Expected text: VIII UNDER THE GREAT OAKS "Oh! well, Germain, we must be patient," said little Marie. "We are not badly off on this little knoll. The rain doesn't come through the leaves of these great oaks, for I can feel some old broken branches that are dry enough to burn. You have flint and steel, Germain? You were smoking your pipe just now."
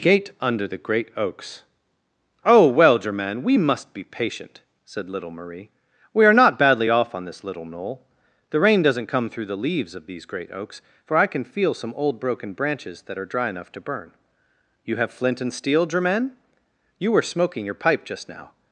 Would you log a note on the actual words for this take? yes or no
yes